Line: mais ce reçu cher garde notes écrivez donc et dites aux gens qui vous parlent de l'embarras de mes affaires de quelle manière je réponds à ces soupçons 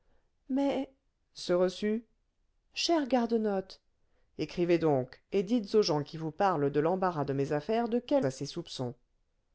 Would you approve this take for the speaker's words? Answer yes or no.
no